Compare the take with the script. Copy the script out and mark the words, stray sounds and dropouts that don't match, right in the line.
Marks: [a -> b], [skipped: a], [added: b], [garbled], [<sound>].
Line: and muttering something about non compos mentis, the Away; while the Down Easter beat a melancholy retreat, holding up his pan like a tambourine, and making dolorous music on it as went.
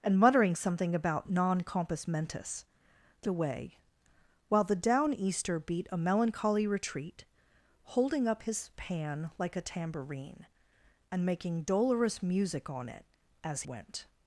and muttering something about non compos mentis, the Away; while the Down Easter beat a melancholy retreat, holding up his pan like a tambourine, and making dolorous music on it as went.